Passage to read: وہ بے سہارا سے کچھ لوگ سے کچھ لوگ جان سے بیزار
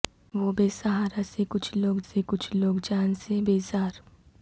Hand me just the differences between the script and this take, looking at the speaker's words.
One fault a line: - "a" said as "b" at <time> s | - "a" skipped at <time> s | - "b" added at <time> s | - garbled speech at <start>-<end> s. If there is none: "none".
none